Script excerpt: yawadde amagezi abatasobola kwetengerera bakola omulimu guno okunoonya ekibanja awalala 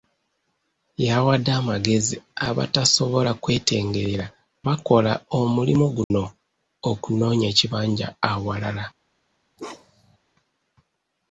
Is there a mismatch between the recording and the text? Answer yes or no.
no